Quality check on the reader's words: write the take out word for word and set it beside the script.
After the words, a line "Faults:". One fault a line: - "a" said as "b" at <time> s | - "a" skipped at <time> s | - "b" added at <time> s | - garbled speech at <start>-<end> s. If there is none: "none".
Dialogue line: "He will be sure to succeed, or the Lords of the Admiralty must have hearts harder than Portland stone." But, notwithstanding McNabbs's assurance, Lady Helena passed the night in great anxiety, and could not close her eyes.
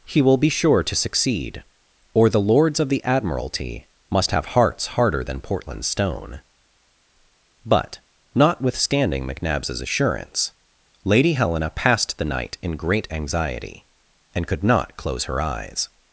"He will be sure to succeed, or the Lords of the Admiralty must have hearts harder than Portland stone." But, notwithstanding McNabbs's assurance, Lady Helena passed the night in great anxiety, and could not close her eyes.
Faults:
none